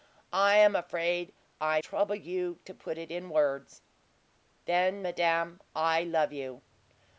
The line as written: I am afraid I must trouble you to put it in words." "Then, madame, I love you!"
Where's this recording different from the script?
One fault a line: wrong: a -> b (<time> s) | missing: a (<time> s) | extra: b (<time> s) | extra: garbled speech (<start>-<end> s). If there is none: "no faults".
missing: must (1.8 s)